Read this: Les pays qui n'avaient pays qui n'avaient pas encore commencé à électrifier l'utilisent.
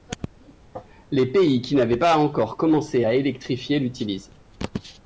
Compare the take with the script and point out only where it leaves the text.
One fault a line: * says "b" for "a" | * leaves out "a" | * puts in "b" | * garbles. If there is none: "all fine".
* leaves out "pays qui n'avaient"